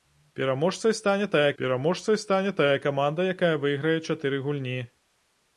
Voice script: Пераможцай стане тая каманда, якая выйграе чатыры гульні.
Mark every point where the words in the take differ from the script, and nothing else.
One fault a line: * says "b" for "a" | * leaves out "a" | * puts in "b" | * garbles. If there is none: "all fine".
* puts in "пераможцай стане тая"